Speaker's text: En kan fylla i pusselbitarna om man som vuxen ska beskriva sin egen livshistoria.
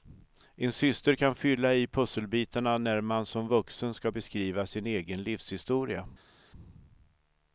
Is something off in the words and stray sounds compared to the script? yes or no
yes